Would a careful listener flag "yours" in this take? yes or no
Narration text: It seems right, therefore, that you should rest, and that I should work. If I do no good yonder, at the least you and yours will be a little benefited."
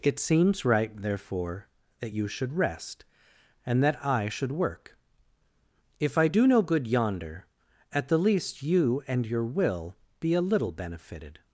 yes